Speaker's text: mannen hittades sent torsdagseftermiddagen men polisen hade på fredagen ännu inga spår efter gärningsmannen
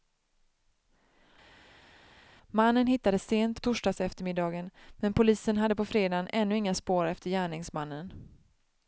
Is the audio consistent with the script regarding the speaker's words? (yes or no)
yes